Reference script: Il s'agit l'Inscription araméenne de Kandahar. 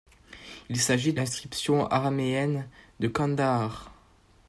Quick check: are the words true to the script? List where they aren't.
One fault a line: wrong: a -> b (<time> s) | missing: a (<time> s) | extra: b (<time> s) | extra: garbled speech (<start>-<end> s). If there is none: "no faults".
no faults